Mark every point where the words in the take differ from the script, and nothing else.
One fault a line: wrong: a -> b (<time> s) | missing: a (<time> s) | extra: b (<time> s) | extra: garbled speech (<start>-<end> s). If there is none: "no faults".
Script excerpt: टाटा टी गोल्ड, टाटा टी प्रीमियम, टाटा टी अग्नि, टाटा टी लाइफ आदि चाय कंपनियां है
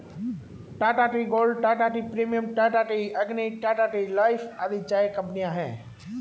no faults